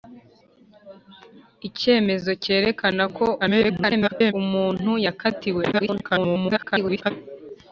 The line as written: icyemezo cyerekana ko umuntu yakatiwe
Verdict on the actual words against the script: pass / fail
fail